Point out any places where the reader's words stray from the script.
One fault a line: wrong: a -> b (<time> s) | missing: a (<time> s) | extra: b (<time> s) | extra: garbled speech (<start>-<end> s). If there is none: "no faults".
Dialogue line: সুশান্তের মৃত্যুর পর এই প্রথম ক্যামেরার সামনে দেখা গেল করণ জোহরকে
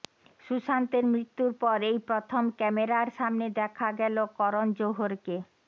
no faults